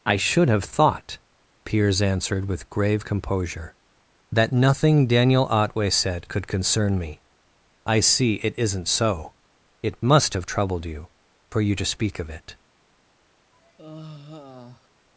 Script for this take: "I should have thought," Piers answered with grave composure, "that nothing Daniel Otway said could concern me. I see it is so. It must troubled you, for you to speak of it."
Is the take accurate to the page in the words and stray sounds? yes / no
no